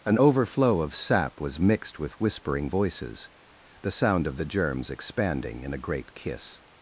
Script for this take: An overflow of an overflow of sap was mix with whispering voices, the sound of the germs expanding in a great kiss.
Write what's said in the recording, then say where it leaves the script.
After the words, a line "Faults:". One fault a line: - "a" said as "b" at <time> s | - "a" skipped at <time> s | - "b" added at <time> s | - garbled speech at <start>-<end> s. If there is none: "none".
An overflow of sap was mixed with whispering voices, the sound of the germs expanding in a great kiss.
Faults:
- "an overflow of" skipped at 1.0 s
- "mix" said as "mixed" at 1.6 s